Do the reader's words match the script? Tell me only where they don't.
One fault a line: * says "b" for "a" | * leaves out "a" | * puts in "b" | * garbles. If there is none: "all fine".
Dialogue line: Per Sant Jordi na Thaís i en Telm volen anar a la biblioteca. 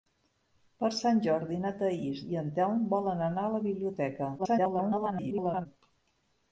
* garbles